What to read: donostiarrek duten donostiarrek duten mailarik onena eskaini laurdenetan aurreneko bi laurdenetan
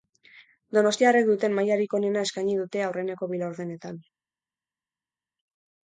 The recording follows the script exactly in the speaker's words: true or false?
false